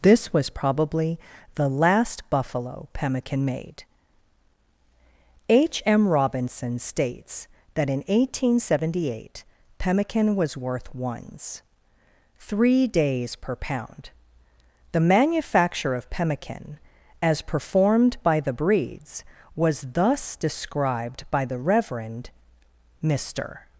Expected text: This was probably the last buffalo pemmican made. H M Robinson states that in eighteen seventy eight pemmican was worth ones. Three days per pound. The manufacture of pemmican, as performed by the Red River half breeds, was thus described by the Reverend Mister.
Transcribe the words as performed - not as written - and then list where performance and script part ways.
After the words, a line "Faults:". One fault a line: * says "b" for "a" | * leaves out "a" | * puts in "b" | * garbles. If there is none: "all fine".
This was probably the last buffalo pemmican made. H M Robinson states that in eighteen seventy eight pemmican was worth ones. Three days per pound. The manufacture of pemmican, as performed by the breeds, was thus described by the Reverend Mister.
Faults:
* leaves out "Red River half"